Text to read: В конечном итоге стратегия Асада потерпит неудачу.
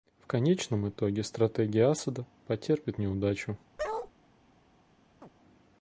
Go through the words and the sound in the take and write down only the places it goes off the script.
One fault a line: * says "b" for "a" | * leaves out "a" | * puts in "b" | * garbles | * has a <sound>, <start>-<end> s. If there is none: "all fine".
* has a bark, 3.8-4.1 s
* has a chirp, 5.2-5.3 s